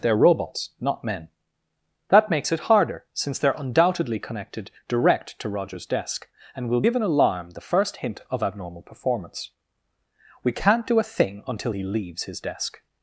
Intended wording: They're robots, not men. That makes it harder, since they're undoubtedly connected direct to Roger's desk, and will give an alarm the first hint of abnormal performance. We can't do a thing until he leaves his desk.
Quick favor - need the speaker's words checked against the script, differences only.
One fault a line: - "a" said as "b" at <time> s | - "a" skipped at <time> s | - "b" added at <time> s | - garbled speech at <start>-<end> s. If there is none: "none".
none